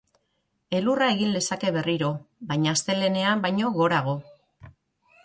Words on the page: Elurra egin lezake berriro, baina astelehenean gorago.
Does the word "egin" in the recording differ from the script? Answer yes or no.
no